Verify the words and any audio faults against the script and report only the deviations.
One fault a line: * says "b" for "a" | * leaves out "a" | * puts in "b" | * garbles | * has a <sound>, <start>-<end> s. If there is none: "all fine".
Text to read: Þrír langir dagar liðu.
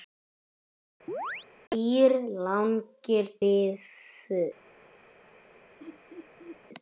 * has a chirp, 1.1-1.5 s
* leaves out "dagar"
* has a laugh, 5.8-6.6 s